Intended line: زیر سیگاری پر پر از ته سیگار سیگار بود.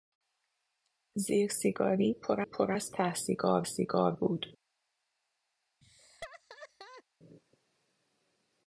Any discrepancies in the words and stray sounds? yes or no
yes